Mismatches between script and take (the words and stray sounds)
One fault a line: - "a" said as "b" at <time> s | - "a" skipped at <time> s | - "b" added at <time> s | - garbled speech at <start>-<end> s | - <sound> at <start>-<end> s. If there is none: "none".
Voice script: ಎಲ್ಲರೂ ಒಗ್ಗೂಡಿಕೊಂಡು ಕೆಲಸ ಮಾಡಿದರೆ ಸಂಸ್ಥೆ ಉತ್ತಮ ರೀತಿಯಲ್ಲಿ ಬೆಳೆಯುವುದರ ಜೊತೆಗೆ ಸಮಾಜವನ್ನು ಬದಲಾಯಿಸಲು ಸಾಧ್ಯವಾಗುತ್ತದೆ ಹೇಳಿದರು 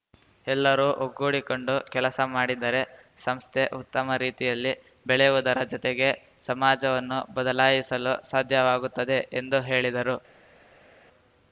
- "ಎಂದು" added at 9.4 s